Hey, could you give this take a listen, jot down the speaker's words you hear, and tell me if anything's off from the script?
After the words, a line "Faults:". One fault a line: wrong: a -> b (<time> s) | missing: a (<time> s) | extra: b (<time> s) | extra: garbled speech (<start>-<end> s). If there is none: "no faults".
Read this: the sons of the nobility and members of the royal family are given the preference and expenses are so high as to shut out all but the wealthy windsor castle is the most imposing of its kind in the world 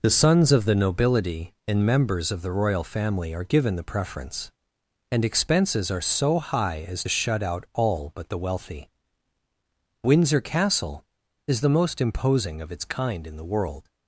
the sons of the nobility and members of the royal family are given the preference and expenses are so high as shut out all but the wealthy windsor castle is the most imposing of its kind in the world
Faults:
missing: to (7.0 s)